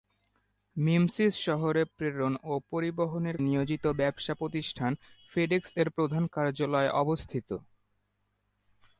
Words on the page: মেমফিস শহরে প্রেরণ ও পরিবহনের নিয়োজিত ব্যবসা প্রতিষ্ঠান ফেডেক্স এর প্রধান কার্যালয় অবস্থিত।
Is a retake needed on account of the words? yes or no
no